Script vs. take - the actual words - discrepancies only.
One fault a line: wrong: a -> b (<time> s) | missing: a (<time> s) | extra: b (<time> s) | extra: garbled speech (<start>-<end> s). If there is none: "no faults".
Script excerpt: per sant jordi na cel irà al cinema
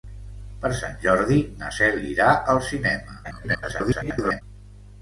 extra: garbled speech (3.2-4.4 s)